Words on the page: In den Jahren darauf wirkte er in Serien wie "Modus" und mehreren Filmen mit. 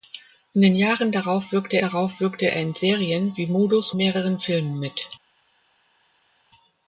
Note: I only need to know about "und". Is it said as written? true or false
false